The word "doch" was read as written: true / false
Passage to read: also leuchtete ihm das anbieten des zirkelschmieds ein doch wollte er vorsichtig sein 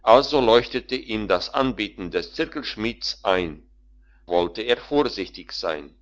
false